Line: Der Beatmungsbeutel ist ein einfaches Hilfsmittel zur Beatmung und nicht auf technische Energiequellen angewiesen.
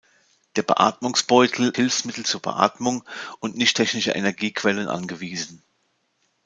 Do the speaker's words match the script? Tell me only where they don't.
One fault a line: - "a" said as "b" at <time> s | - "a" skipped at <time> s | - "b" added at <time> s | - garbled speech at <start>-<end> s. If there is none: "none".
- "ist ein einfaches" skipped at 1.8 s
- "auf" skipped at 3.8 s